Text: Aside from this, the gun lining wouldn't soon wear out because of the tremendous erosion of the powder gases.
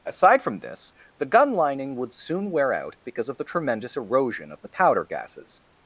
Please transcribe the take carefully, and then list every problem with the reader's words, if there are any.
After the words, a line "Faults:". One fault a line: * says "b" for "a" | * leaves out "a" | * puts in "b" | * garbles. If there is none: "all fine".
Aside from this, the gun lining would soon wear out because of the tremendous erosion of the powder gases.
Faults:
* says "would" for "wouldn't"